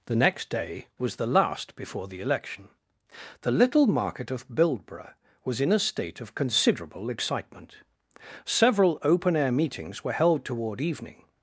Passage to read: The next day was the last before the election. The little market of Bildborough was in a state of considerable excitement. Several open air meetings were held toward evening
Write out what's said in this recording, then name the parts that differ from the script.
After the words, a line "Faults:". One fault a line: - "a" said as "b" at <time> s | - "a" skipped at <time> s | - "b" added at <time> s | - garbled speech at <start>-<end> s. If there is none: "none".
The next day was the last before the election. The little market of Bildborough was in a state of considerable excitement. Several open air meetings were held toward evening
Faults:
none